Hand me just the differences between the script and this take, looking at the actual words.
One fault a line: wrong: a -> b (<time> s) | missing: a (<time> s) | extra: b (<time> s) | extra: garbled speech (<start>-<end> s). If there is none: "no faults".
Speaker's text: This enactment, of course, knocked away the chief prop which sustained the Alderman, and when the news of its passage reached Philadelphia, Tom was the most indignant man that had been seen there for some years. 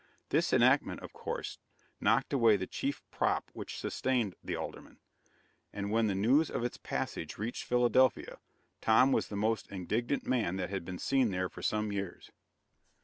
no faults